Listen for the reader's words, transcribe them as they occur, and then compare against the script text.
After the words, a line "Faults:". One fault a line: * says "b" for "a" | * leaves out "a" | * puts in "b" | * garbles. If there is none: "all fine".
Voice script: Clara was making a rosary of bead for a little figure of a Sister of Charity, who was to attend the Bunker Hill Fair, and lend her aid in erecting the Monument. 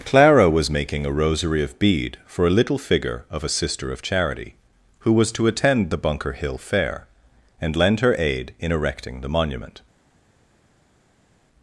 Clara was making a rosary of bead for a little figure of a Sister of Charity, who was to attend the Bunker Hill Fair, and lend her aid in erecting the Monument.
Faults:
all fine